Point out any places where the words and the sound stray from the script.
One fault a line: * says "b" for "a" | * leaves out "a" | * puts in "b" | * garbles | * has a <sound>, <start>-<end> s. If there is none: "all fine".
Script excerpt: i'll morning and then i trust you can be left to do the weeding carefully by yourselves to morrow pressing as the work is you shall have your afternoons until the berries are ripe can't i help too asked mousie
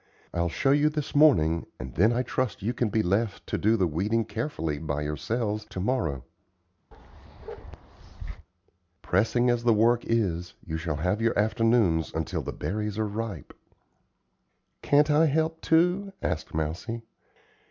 * puts in "show you this"
* has a bark, 6.9-8.5 s